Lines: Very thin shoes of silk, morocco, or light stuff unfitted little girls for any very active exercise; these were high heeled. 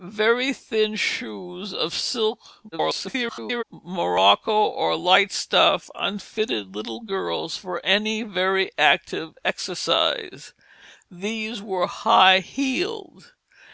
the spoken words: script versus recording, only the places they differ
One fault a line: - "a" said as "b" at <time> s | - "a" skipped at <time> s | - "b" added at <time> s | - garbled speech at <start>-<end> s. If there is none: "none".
- garbled speech at 2.7-3.6 s